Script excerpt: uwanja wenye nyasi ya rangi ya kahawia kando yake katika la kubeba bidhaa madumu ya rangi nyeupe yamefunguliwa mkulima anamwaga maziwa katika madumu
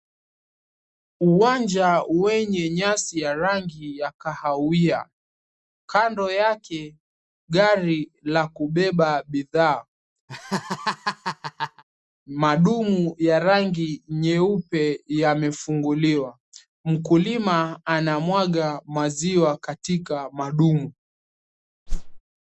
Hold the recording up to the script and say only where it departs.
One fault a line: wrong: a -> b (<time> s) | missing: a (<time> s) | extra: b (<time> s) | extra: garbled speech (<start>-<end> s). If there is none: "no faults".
wrong: katika -> gari (7.5 s)